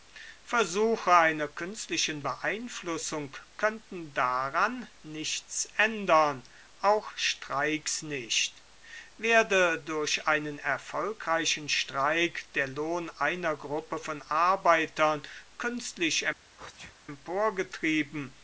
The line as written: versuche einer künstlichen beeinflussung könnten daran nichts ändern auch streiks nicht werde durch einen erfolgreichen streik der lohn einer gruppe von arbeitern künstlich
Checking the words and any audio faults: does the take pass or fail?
fail